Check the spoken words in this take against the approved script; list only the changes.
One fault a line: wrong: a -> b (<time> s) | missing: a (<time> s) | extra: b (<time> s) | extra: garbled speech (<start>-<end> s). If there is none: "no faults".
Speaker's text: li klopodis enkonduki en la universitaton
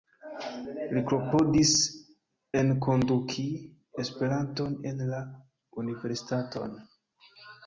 extra: esperanton (4.0 s)